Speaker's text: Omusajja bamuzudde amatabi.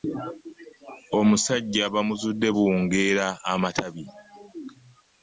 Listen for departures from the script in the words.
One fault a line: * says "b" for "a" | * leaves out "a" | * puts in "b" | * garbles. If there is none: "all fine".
* puts in "buwungeera"